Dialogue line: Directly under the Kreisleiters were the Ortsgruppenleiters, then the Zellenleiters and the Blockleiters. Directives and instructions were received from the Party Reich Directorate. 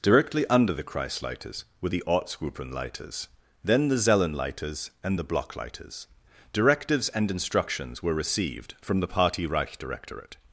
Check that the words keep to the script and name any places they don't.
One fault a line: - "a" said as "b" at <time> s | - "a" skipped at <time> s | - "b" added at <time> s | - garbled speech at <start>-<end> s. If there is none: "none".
none